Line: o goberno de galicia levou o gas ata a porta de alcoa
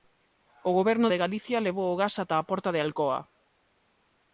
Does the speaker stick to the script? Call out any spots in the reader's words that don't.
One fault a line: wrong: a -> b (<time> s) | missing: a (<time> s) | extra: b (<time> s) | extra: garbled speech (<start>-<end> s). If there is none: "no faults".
no faults